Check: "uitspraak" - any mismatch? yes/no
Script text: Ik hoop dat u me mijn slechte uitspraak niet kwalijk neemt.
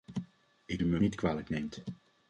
yes